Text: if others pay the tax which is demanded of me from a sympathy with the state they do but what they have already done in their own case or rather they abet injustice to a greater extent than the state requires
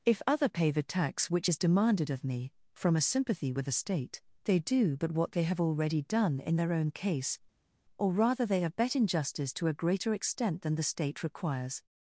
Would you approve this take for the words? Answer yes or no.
no